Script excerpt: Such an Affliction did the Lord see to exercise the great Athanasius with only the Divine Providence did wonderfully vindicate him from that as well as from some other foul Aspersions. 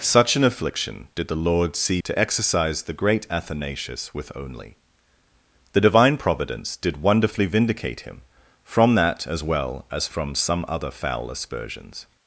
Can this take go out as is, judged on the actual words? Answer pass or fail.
pass